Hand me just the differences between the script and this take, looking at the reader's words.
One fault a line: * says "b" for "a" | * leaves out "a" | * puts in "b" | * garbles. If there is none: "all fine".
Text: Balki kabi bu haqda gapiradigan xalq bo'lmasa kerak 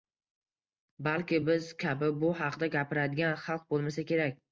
* puts in "biz"